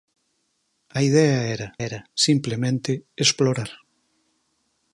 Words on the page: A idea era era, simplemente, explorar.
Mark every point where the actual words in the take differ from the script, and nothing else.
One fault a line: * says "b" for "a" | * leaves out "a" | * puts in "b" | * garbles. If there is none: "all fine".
all fine